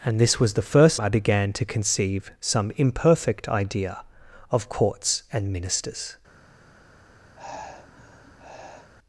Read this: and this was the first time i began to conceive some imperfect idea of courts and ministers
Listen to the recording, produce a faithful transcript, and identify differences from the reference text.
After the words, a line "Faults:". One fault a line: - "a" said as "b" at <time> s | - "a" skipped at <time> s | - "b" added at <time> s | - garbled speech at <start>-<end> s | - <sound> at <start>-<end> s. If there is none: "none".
and this was the first i began to conceive some imperfect idea of courts and ministers
Faults:
- "time" skipped at 1.0 s
- sigh at 7.4-8.9 s